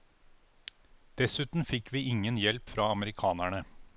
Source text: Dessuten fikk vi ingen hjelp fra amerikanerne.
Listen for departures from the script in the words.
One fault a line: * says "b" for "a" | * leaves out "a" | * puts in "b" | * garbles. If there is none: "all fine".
all fine